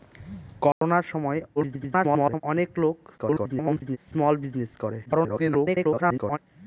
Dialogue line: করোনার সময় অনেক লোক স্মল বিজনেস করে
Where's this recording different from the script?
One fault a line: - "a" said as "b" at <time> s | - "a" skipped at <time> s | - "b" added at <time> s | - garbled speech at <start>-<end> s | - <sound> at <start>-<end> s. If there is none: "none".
- dropout at 0.7-0.8 s
- garbled speech at 1.6-2.4 s
- garbled speech at 3.2-4.0 s
- garbled speech at 5.1-6.4 s